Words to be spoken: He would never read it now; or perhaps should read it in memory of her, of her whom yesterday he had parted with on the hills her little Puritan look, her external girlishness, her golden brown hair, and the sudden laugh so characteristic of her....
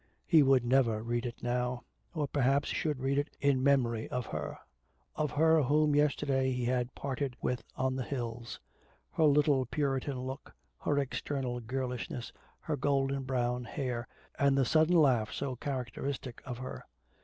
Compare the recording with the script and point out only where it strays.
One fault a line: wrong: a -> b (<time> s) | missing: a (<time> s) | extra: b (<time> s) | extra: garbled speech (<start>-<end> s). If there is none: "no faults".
no faults